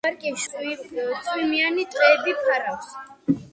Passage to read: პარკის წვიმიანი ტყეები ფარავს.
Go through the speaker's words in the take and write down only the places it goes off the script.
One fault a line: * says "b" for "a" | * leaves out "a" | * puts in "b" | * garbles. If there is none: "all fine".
all fine